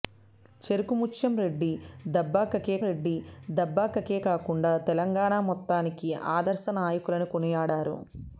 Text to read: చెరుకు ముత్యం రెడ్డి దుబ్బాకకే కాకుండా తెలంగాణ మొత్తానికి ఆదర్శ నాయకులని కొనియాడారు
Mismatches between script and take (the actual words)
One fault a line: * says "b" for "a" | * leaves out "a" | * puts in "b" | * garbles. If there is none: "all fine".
* puts in "రెడ్డి దుబ్బాకకే"